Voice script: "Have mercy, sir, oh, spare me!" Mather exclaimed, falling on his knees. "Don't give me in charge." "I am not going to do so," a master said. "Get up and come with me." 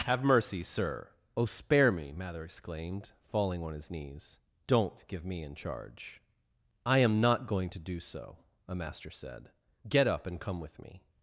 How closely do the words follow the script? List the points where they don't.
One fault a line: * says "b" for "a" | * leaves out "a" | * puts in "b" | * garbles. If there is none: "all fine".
all fine